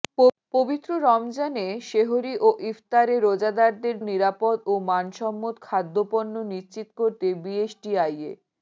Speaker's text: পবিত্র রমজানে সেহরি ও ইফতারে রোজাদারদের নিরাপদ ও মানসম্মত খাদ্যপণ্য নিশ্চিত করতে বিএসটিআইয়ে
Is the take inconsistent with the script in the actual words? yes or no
no